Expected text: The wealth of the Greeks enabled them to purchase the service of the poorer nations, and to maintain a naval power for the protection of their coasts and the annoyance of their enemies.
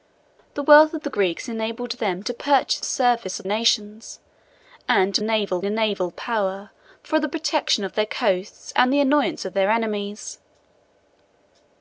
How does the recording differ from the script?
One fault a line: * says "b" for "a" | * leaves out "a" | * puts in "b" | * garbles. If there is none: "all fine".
* leaves out "the"
* leaves out "the poorer"
* says "naval" for "maintain"